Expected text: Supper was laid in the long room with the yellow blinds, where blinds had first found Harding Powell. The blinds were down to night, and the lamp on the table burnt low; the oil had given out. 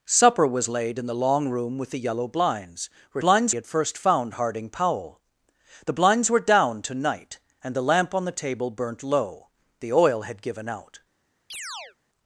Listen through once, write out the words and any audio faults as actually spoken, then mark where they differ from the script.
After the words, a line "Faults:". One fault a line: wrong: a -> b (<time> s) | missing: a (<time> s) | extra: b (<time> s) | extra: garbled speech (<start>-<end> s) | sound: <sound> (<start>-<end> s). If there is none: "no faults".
Supper was laid in the long room with the yellow blinds, where blinds had first found Harding Powell. The blinds were down to night, and the lamp on the table burnt low; the oil had given out.
Faults:
sound: chirp (11.5-12.0 s)